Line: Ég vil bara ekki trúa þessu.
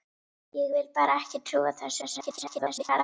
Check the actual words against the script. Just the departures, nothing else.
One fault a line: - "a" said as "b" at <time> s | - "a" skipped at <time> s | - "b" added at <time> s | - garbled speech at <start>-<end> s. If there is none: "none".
- garbled speech at 2.0-3.0 s